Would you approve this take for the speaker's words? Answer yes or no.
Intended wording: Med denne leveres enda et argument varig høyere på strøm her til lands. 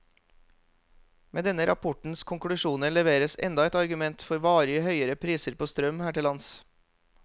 no